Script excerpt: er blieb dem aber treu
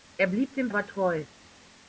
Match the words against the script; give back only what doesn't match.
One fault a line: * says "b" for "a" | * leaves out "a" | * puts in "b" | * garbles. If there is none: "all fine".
all fine